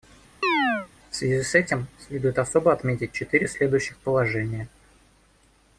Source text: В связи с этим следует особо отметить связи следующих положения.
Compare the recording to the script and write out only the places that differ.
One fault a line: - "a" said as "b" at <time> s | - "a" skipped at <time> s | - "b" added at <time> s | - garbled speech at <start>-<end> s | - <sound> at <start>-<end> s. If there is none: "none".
- chirp at 0.4-0.9 s
- "связи" said as "четыре" at 3.1 s